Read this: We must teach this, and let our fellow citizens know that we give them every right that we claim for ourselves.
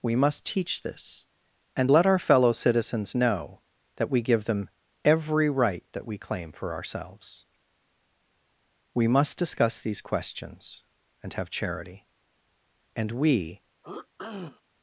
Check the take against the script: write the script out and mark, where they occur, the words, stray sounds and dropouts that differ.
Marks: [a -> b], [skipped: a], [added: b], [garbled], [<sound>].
We must teach this, and let our fellow citizens know that we give them every right that we claim for ourselves. [added: We must discuss these questions and have charity and we] [throat clearing]